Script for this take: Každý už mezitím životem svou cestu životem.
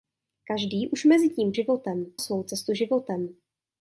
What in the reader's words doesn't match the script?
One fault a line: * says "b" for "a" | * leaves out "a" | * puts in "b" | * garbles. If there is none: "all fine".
all fine